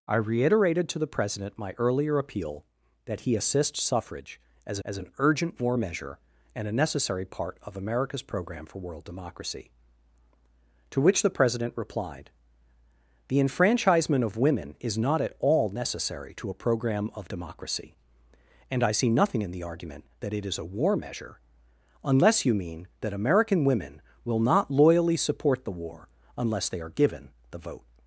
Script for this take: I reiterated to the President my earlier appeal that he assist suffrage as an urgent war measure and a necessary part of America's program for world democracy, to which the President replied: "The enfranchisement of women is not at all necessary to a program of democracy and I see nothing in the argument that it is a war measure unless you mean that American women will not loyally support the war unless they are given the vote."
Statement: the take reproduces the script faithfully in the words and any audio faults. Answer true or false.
false